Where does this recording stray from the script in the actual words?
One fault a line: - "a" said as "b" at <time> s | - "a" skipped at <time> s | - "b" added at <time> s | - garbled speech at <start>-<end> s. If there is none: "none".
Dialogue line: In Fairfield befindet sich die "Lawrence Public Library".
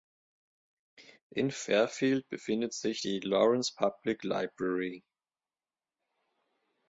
none